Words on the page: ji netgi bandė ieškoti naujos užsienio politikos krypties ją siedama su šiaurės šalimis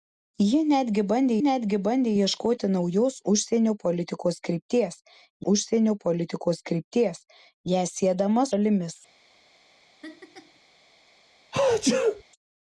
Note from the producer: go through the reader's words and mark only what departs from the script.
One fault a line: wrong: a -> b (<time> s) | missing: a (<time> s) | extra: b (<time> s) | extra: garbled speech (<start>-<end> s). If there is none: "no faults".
extra: netgi bandė (1.4 s)
extra: užsienio politikos krypties (5.5 s)
missing: su šiaurės (8.5 s)